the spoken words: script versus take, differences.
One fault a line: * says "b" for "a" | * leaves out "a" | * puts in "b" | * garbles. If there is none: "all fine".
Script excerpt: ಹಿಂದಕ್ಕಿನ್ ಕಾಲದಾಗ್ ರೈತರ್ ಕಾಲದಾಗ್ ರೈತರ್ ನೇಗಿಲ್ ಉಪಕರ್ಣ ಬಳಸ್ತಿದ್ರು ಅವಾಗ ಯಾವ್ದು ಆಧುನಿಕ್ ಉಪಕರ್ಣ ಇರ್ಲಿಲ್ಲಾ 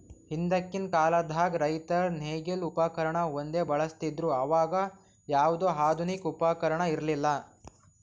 * leaves out "ಕಾಲದಾಗ್ ರೈತರ್"
* puts in "ಒಂದೇ"